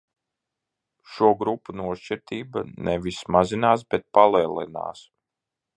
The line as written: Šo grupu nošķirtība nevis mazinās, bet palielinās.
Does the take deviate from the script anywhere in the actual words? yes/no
no